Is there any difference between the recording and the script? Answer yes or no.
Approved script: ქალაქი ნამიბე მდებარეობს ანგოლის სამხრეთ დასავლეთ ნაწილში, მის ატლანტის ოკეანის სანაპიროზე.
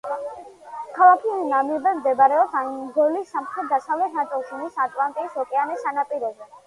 no